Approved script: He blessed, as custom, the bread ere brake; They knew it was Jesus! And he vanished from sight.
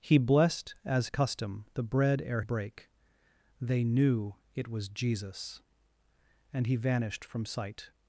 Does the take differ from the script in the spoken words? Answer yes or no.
no